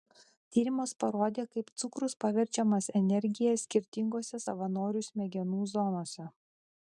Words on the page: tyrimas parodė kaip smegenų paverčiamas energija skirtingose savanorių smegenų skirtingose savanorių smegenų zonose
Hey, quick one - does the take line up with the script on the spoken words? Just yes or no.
no